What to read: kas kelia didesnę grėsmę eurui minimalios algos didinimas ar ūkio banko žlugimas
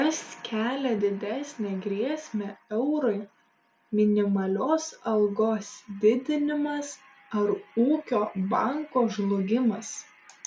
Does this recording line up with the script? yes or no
yes